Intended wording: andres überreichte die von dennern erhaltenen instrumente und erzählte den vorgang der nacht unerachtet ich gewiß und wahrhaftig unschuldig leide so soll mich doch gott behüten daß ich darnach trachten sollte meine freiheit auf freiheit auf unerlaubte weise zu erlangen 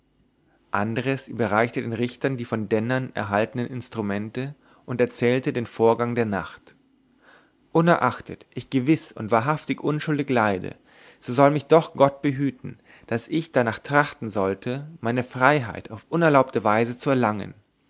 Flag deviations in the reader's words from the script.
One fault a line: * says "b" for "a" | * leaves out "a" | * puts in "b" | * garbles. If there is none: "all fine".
* puts in "den richtern"
* leaves out "freiheit auf"